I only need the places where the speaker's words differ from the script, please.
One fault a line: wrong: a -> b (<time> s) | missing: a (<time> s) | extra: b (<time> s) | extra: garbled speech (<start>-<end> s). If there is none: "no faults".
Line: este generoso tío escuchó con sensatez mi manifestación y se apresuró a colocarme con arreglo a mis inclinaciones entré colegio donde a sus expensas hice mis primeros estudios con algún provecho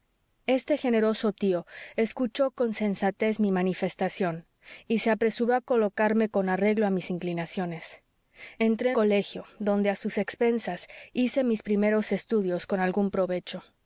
no faults